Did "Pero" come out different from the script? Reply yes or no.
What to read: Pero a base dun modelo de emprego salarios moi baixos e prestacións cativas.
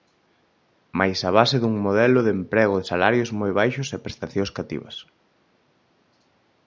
yes